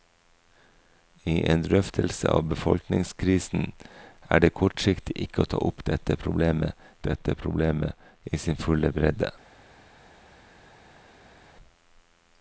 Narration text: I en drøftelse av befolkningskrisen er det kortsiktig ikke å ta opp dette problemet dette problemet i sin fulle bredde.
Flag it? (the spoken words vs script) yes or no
no